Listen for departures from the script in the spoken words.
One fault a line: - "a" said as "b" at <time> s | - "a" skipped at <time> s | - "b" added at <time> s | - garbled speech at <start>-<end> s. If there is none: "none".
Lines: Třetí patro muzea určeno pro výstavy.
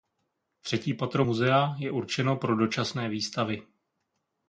- "je" added at 1.8 s
- "dočasné" added at 2.5 s